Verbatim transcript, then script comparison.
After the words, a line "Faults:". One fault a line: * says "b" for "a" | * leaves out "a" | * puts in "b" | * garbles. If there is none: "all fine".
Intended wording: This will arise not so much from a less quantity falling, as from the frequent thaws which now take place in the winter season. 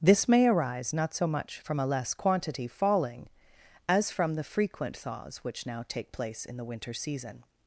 This may arise not so much from a less quantity falling, as from the frequent thaws which now take place in the winter season.
Faults:
* says "may" for "will"